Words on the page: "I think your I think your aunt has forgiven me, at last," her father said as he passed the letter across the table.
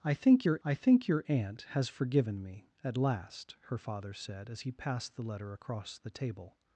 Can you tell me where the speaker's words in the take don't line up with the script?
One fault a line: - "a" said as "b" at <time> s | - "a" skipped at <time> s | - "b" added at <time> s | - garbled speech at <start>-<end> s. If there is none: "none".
none